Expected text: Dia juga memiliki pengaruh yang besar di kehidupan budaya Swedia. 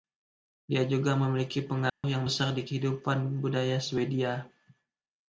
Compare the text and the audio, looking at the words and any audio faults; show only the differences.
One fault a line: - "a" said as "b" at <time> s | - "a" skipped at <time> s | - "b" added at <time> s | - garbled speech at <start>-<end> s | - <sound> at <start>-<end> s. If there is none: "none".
- dropout at 1.9-2.0 s